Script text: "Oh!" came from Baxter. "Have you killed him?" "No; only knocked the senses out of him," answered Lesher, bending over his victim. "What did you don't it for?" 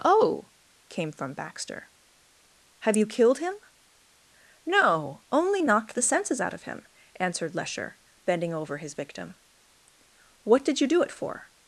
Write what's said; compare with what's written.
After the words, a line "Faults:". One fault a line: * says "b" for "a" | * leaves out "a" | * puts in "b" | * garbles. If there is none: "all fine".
"Oh!" came from Baxter. "Have you killed him?" "No; only knocked the senses out of him," answered Lesher, bending over his victim. "What did you do it for?"
Faults:
* says "do" for "don't"